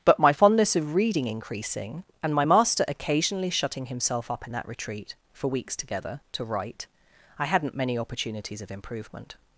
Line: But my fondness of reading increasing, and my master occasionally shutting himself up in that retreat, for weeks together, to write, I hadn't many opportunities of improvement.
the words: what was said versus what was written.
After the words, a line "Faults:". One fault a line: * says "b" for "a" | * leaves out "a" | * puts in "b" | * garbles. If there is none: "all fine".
But my fondness of reading increasing, and my master occasionally shutting himself up in that retreat, for weeks together, to write, I hadn't many opportunities of improvement.
Faults:
all fine